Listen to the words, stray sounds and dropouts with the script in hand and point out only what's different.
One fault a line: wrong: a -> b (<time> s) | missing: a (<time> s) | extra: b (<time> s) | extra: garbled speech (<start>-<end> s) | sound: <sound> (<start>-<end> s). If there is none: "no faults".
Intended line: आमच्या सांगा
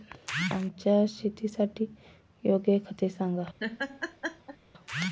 extra: शेतासाठी योग्य खते (1.0 s)
sound: laugh (3.6-4.6 s)